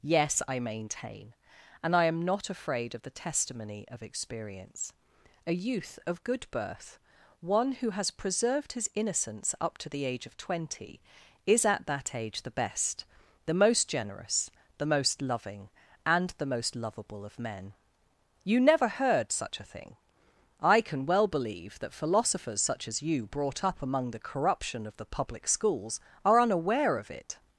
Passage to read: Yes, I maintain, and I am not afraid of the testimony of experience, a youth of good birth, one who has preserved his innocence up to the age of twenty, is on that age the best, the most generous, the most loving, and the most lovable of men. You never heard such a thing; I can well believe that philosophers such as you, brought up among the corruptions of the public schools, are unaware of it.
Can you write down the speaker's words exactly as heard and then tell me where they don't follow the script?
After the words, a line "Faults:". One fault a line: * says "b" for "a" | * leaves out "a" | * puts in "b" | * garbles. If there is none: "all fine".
Yes, I maintain, and I am not afraid of the testimony of experience, a youth of good birth, one who has preserved his innocence up to the age of twenty, is at that age the best, the most generous, the most loving, and the most lovable of men. You never heard such a thing; I can well believe that philosophers such as you, brought up among the corruption of the public schools, are unaware of it.
Faults:
* says "at" for "on"
* says "corruption" for "corruptions"